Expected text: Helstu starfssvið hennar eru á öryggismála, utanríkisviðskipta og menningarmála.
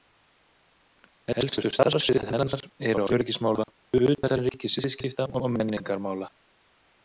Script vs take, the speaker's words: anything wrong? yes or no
no